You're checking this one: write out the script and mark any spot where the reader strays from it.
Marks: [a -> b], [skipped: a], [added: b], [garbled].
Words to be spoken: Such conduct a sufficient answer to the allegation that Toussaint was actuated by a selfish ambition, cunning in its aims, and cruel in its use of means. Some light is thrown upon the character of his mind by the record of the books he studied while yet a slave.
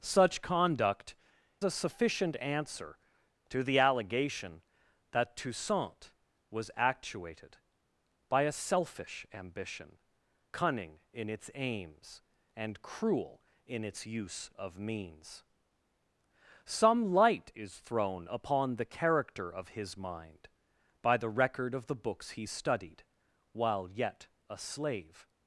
Such conduct a sufficient answer to the allegation that Toussaint was actuated by a selfish ambition, cunning in its aims, and cruel in its use of means. Some light is thrown upon the character of his mind by the record of the books he studied while yet a slave.